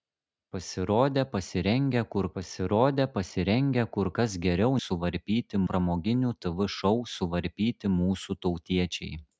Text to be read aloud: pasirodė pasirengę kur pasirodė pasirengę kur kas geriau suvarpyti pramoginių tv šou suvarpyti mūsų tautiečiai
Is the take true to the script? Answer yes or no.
yes